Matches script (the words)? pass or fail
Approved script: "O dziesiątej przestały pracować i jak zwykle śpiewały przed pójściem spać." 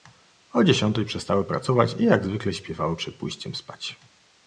pass